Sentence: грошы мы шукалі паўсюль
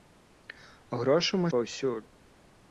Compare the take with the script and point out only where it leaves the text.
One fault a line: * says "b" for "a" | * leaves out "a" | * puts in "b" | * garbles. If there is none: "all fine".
* leaves out "шукалі"